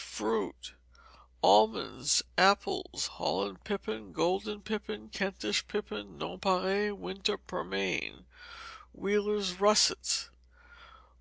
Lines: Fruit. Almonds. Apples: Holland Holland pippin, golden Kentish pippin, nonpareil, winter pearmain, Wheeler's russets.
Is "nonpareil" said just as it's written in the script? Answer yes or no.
yes